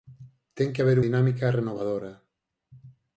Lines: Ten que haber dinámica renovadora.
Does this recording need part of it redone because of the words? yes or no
no